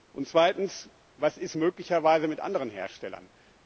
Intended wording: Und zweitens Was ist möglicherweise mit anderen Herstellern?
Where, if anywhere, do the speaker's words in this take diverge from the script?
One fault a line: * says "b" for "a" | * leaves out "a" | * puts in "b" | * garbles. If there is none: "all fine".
all fine